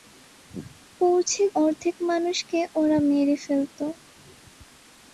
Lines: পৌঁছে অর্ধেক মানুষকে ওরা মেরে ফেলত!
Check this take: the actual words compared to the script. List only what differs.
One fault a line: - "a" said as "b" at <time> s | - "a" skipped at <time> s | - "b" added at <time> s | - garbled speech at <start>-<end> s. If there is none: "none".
none